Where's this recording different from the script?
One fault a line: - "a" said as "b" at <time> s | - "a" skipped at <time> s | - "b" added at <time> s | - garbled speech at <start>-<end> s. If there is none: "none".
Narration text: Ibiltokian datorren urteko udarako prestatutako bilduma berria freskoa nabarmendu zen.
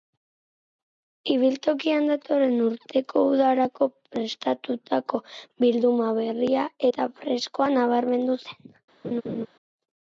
- "eta" added at 6.9 s